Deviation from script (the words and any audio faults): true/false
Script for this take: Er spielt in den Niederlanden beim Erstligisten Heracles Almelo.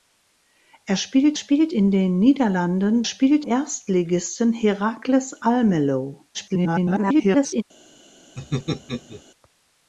true